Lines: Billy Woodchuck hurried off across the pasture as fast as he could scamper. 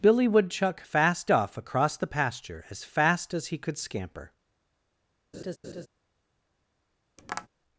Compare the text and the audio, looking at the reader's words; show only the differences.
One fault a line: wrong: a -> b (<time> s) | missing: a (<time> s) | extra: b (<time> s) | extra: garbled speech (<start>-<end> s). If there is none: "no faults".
wrong: hurried -> fast (0.8 s)